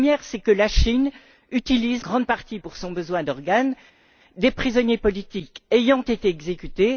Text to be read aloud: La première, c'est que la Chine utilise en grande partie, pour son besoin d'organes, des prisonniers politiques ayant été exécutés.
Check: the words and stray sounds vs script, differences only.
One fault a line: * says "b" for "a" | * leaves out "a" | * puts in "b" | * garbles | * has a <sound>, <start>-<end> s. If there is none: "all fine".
* leaves out "en"